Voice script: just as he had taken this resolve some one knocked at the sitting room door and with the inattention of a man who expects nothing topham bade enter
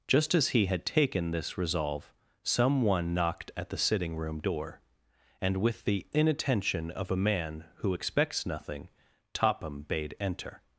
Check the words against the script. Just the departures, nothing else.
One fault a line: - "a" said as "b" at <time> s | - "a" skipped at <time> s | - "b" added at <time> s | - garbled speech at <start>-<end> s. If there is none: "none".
none